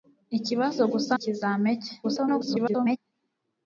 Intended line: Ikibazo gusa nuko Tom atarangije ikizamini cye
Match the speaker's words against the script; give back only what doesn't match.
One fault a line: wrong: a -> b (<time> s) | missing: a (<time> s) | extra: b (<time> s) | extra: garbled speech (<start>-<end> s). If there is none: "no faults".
missing: nuko Tom atarangije (1.1 s)
extra: garbled speech (2.0-3.0 s)